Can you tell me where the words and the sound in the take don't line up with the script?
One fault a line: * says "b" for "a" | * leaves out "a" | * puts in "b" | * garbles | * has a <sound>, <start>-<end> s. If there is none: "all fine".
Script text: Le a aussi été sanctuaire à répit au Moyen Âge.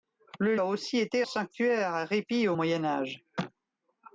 all fine